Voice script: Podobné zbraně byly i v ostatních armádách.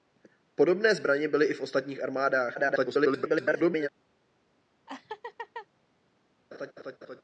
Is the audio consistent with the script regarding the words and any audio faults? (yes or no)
no